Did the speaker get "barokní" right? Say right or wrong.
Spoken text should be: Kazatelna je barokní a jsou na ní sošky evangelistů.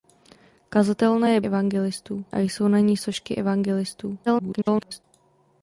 wrong